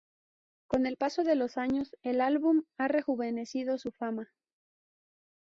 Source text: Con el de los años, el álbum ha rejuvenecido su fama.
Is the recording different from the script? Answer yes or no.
yes